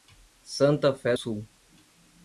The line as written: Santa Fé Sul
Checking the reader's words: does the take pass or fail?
pass